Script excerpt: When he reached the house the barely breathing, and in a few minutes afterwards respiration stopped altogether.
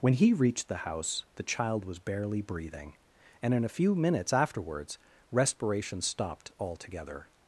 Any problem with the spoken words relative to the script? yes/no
yes